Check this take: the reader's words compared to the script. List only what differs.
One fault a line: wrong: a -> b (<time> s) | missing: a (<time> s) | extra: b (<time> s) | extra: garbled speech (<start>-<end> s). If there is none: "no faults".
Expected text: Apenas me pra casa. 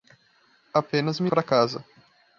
no faults